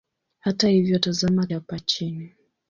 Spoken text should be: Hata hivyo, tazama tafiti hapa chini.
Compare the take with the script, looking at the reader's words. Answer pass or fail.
fail